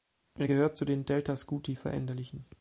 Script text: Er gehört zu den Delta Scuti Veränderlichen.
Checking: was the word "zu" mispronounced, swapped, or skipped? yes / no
no